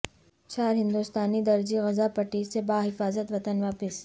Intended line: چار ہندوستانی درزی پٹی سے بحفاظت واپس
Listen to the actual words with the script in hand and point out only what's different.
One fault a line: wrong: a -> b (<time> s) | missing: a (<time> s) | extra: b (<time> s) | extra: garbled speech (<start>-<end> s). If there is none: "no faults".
extra: غزہ (1.8 s)
extra: وطن (3.3 s)